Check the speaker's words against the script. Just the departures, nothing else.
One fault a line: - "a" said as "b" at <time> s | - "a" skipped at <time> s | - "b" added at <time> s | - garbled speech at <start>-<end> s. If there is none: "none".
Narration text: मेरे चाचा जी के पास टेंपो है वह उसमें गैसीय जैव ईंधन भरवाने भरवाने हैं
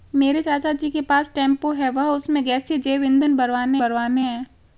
none